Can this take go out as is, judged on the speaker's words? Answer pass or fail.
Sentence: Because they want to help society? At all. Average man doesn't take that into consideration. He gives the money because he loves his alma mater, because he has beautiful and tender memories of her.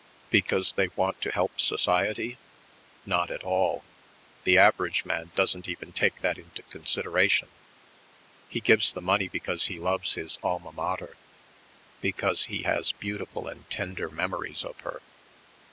fail